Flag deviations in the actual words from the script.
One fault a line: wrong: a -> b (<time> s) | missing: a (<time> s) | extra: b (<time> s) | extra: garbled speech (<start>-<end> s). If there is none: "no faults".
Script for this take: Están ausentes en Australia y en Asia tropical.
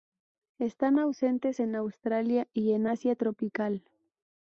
no faults